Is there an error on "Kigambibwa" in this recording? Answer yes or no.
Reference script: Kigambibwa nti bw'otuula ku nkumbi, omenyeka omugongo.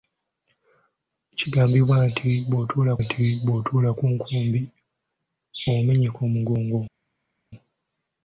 no